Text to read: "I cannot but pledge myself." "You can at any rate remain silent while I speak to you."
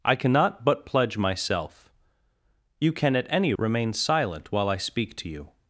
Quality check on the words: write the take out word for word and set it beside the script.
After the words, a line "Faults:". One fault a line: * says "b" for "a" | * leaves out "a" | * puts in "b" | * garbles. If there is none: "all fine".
"I cannot but pledge myself." "You can at any remain silent while I speak to you."
Faults:
* leaves out "rate"